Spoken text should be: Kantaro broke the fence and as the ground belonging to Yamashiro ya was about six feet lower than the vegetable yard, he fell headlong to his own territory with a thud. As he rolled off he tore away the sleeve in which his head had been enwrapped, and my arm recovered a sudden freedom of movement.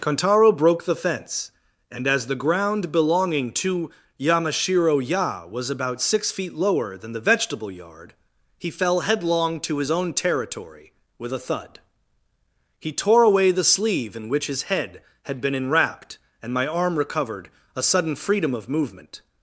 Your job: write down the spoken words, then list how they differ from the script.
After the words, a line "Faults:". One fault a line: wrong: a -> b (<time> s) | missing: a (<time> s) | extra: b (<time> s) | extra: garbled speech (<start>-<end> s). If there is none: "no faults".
Kantaro broke the fence and as the ground belonging to Yamashiro ya was about six feet lower than the vegetable yard, he fell headlong to his own territory with a thud. he tore away the sleeve in which his head had been enwrapped, and my arm recovered a sudden freedom of movement.
Faults:
missing: As he rolled off (11.8 s)